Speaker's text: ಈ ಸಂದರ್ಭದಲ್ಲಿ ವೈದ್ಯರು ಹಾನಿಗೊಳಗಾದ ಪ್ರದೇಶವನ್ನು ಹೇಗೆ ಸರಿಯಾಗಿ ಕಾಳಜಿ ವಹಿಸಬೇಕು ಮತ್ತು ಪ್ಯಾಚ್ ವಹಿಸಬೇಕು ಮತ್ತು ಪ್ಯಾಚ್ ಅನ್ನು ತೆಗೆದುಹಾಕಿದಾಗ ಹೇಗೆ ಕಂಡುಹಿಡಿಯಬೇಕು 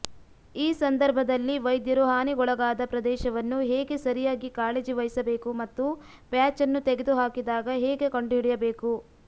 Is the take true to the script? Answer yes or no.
no